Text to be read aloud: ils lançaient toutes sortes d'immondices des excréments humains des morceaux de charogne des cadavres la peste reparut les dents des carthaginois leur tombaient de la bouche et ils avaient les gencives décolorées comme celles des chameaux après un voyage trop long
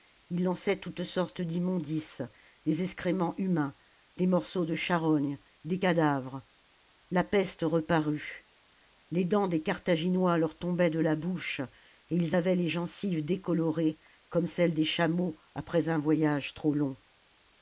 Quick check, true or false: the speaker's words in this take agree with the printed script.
true